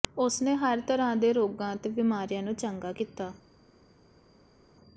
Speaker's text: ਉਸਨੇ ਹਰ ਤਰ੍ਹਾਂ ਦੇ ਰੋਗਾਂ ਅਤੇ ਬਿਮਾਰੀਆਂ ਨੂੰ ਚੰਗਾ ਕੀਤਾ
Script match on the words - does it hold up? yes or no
yes